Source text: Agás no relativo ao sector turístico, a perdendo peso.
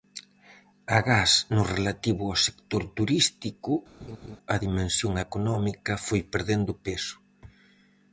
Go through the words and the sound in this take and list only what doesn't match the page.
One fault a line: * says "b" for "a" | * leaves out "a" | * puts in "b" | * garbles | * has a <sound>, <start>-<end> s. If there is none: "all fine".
* has a laugh, 4.0-4.4 s
* puts in "dimensión económica foi"